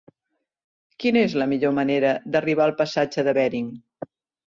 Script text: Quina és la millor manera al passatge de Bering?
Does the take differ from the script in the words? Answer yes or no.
yes